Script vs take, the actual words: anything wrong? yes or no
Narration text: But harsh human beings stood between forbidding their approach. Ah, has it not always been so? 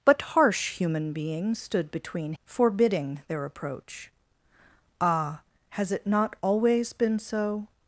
no